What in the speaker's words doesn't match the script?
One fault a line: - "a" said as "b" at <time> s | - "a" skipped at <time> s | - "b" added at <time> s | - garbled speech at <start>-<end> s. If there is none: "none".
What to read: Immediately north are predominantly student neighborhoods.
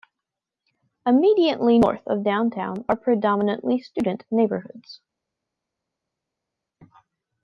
- "of downtown" added at 2.1 s